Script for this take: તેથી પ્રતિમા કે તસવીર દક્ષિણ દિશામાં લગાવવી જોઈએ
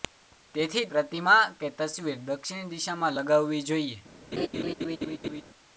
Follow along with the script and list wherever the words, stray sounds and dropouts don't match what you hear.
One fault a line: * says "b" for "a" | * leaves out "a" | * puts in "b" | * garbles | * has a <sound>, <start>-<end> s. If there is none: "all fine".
* has a laugh, 4.3-5.4 s